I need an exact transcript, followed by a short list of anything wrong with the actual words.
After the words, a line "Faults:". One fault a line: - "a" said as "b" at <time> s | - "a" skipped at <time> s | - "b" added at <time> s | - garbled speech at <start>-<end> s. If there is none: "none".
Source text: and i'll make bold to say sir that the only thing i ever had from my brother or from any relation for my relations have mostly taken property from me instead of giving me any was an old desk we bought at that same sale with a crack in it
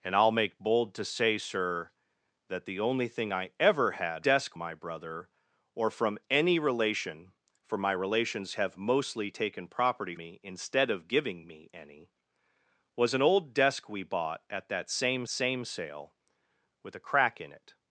and i'll make bold to say sir that the only thing i ever had desk my brother or from any relation for my relations have mostly taken property me instead of giving me any was an old desk we bought at that same same sale with a crack in it
Faults:
- "from" said as "desk" at 4.2 s
- "from" skipped at 10.1 s
- "same" added at 15.3 s